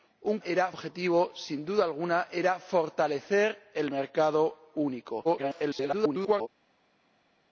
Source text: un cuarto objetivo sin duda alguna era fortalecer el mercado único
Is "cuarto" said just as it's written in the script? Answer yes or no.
no